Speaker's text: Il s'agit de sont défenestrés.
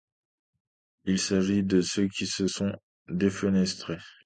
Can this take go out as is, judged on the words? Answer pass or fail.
fail